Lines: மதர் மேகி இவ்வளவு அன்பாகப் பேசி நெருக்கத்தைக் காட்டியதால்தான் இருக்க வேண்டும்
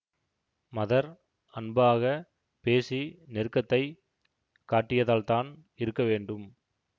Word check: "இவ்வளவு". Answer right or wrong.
wrong